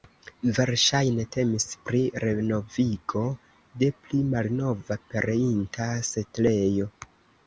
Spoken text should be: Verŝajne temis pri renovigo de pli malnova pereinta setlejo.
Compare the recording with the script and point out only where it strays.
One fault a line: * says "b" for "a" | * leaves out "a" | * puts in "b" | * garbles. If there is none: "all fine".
all fine